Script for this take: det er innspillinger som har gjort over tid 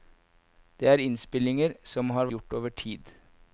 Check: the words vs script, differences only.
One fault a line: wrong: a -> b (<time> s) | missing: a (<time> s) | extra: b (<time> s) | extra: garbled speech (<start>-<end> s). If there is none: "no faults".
no faults